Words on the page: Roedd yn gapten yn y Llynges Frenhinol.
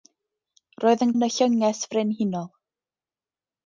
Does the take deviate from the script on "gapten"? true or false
true